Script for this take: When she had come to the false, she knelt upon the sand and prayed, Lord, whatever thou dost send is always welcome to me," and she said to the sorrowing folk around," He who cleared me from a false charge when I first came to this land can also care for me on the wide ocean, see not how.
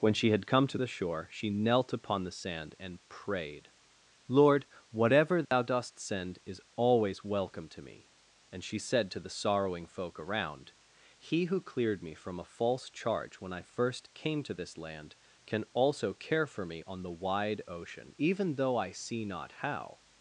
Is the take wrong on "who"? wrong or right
right